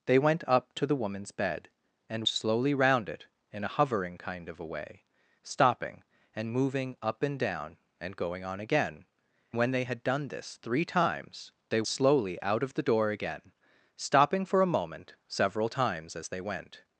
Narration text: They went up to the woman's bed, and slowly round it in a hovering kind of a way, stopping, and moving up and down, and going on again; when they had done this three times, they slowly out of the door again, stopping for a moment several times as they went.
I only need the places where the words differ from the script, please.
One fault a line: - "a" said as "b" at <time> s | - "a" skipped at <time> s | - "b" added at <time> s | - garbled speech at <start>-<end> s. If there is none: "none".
none